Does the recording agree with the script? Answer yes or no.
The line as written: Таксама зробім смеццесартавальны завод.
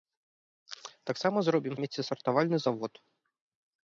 yes